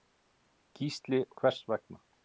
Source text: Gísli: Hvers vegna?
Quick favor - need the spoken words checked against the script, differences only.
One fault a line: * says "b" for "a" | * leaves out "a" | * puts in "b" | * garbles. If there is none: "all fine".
all fine